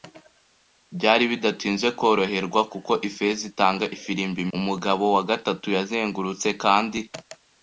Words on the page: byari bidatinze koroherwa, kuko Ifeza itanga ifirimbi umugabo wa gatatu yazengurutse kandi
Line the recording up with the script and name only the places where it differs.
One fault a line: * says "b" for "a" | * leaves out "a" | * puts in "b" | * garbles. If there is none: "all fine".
all fine